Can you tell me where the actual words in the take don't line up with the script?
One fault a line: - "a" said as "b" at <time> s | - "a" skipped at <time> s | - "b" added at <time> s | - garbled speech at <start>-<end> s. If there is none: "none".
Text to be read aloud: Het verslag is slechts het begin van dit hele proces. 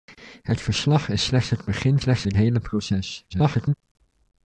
- "van" said as "slechts" at 2.0 s
- garbled speech at 3.3-3.7 s